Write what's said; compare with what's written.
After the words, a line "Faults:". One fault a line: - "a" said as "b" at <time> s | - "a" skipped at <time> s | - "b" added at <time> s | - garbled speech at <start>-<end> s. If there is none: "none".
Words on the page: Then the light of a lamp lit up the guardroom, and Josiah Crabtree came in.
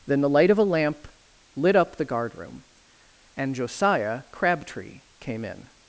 Then the light of a lamp lit up the guardroom, and Josiah Crabtree came in.
Faults:
none